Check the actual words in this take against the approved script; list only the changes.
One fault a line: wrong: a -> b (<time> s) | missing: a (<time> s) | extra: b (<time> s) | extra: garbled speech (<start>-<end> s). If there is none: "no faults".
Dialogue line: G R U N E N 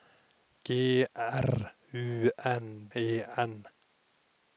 no faults